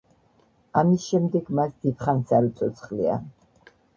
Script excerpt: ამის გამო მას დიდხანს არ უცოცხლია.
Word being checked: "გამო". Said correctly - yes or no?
no